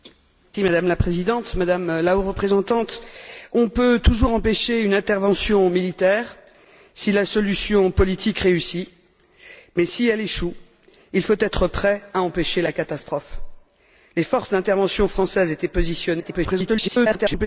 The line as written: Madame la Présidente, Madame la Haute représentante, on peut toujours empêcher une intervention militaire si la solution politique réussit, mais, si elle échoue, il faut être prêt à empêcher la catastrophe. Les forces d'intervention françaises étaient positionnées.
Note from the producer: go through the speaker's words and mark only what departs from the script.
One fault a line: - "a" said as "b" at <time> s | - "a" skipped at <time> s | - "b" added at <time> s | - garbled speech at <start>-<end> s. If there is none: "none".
- garbled speech at 16.2-17.5 s